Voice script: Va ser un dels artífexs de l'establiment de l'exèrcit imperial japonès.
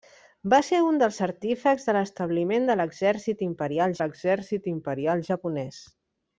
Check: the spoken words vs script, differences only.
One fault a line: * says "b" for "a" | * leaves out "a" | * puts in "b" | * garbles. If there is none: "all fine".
* puts in "l'exèrcit imperial"